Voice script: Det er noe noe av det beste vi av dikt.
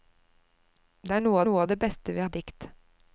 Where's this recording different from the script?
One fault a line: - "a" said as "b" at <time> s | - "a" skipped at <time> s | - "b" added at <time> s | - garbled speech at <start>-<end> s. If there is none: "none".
none